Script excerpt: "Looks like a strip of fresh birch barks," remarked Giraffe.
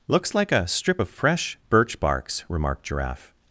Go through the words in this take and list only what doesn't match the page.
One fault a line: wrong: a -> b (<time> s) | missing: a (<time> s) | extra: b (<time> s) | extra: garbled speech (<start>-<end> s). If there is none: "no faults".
no faults